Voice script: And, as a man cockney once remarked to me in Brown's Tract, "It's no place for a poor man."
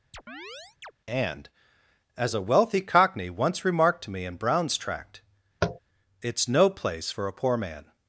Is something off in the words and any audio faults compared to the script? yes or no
yes